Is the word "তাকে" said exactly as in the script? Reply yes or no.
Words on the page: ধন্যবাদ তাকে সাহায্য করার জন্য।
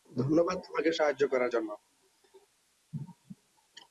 no